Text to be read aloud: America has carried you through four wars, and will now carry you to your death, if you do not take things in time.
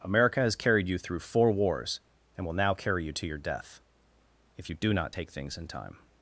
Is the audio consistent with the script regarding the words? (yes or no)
yes